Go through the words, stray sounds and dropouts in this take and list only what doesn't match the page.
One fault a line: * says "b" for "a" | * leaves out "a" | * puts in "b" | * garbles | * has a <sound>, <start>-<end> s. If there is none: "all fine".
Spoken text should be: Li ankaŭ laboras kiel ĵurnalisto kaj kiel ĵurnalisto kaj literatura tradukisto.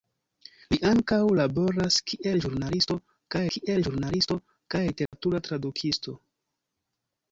* has a dropout, 5.1-5.1 s